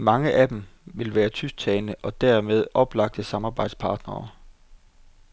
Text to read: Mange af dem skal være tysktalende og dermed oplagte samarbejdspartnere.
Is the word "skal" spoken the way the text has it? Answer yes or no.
no